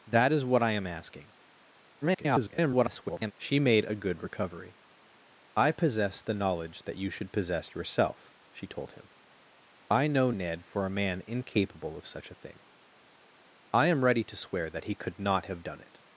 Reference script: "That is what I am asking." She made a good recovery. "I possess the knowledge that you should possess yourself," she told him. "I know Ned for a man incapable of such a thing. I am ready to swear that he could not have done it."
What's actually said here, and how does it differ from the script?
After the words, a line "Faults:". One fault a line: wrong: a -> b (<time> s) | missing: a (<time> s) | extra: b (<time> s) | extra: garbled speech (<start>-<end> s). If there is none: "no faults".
"That is what I am asking." [garbled] She made a good recovery. "I possess the knowledge that you should possess yourself," she told him. "I know Ned for a man incapable of such a thing. I am ready to swear that he could not have done it."
Faults:
extra: garbled speech (2.0-3.3 s)